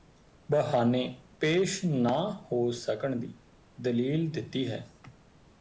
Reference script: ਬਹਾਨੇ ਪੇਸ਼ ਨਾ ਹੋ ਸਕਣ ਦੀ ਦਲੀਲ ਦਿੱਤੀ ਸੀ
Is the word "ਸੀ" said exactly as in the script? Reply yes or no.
no